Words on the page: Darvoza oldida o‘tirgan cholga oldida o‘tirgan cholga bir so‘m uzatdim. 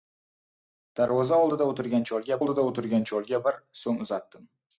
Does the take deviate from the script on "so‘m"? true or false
false